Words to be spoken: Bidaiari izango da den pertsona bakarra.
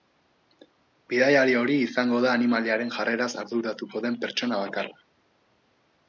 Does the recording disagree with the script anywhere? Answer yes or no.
yes